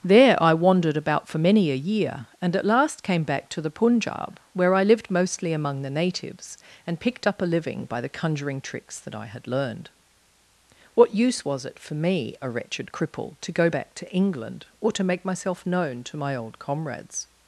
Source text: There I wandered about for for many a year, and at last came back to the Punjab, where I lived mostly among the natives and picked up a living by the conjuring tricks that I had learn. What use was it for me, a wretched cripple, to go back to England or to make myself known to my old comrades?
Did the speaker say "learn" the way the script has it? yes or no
no